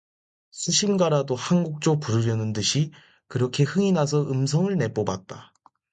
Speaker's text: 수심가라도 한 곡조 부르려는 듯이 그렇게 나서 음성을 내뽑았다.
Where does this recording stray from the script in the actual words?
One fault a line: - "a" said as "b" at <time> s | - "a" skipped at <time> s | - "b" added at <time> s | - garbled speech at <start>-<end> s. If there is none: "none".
- "흥이" added at 3.6 s